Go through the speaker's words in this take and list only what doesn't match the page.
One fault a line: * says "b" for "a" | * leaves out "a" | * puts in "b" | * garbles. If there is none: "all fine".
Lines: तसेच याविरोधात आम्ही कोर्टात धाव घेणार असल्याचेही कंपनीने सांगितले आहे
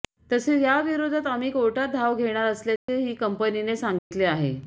all fine